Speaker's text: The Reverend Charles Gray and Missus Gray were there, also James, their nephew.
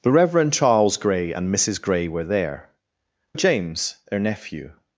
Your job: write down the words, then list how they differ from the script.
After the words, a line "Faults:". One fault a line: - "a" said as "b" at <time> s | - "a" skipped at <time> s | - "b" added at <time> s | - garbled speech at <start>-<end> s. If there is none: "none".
The Reverend Charles Gray and Missus Gray were there, James, their nephew.
Faults:
- "also" skipped at 2.7 s